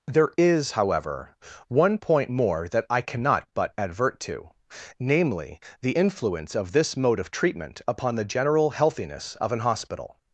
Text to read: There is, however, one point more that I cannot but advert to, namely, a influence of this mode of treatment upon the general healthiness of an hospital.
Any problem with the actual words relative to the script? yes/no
yes